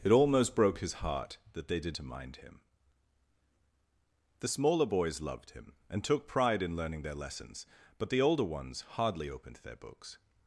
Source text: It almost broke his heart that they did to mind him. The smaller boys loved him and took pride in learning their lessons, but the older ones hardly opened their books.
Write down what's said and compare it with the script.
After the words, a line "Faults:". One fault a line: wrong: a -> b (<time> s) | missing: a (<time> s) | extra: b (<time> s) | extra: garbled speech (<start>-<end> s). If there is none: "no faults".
It almost broke his heart that they did to mind him. The smaller boys loved him and took pride in learning their lessons, but the older ones hardly opened their books.
Faults:
no faults